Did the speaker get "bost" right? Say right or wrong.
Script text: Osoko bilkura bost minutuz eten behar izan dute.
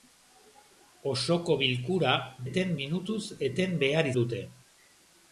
wrong